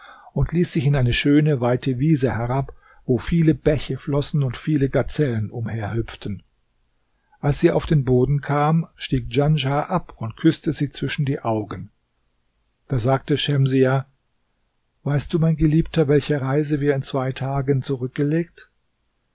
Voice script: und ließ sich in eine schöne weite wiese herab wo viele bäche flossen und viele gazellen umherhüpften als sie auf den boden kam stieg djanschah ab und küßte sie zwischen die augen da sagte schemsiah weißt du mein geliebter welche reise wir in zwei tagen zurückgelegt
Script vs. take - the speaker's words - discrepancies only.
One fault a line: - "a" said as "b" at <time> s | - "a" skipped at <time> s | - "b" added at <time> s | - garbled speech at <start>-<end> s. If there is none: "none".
none